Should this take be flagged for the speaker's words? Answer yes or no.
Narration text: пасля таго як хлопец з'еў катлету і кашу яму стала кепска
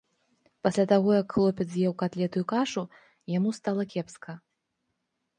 no